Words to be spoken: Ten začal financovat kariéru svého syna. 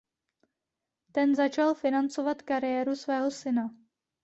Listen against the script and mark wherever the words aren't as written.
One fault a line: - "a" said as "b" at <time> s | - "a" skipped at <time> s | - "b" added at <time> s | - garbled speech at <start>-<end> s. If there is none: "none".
none